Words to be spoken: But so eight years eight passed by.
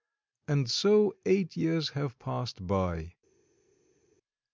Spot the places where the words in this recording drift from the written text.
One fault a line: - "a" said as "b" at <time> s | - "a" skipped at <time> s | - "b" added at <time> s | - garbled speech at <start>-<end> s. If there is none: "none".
- "But" said as "And" at 0.5 s
- "eight" said as "have" at 1.9 s